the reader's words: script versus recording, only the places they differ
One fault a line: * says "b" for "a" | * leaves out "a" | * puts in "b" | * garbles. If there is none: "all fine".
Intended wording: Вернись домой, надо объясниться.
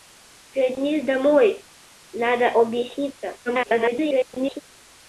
* garbles